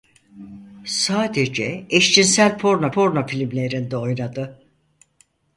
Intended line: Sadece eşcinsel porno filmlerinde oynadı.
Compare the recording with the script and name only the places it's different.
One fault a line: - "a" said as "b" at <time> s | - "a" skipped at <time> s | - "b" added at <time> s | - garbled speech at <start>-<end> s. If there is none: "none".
- "porno" added at 2.9 s